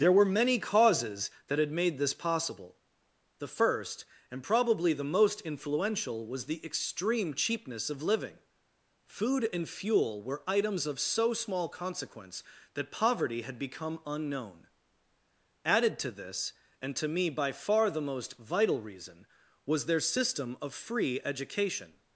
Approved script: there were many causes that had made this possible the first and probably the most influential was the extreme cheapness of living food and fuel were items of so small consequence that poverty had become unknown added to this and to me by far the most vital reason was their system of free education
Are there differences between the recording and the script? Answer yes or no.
no